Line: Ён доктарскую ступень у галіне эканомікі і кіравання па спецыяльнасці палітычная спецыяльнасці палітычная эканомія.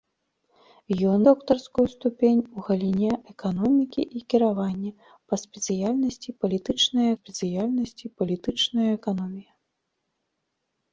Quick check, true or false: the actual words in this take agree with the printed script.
true